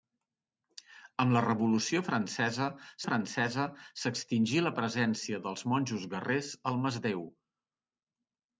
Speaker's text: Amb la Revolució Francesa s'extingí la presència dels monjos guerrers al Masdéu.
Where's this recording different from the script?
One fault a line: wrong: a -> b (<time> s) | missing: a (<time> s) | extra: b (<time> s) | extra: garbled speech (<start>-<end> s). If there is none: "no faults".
extra: Francesa (3.1 s)